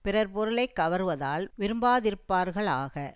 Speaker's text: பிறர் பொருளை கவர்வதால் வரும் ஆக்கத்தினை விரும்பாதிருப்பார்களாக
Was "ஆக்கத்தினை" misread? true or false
true